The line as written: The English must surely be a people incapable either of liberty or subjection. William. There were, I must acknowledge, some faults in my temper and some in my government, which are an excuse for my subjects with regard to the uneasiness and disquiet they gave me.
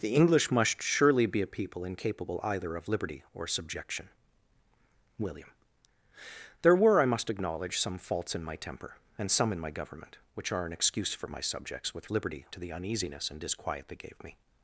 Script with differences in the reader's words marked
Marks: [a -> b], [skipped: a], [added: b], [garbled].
The English must surely be a people incapable either of liberty or subjection. William. There were, I must acknowledge, some faults in my temper and some in my government, which are an excuse for my subjects with [regard -> liberty] to the uneasiness and disquiet they gave me.